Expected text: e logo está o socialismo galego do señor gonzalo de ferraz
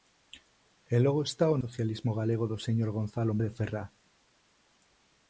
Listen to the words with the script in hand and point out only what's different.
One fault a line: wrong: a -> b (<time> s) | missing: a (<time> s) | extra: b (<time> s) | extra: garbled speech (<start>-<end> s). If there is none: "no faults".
no faults